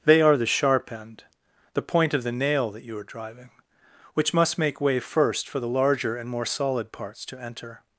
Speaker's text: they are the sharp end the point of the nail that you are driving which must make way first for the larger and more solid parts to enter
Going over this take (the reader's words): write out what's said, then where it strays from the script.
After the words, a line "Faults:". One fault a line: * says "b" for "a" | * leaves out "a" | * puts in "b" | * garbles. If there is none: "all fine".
they are the sharp end the point of the nail that you are driving which must make way first for the larger and more solid parts to enter
Faults:
all fine